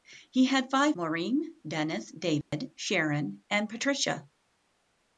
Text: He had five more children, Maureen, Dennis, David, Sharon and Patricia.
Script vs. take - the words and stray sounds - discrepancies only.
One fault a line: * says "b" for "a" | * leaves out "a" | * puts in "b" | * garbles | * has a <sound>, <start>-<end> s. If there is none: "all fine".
* leaves out "more children"
* has a dropout, 2.4-2.5 s